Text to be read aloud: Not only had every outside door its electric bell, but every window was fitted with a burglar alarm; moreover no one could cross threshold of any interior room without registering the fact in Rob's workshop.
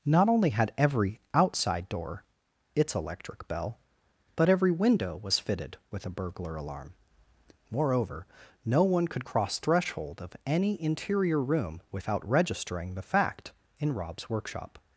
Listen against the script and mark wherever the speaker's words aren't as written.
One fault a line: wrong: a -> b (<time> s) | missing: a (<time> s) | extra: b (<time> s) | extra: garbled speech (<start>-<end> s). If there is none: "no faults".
no faults